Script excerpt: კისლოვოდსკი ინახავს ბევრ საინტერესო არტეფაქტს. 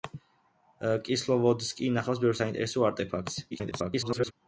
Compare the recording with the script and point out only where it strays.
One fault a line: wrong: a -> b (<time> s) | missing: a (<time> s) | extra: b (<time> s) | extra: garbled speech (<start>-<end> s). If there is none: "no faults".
extra: garbled speech (3.5-4.3 s)